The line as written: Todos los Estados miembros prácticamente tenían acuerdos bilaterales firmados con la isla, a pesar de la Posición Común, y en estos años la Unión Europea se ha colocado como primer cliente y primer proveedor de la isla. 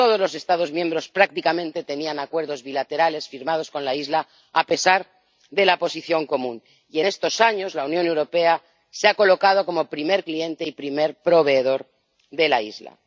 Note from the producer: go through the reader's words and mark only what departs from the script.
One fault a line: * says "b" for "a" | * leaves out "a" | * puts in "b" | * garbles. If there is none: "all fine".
all fine